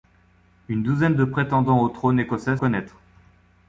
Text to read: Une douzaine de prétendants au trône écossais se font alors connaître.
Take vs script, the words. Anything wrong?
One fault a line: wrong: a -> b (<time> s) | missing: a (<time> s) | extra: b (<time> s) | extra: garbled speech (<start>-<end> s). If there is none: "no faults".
missing: se font alors (2.6 s)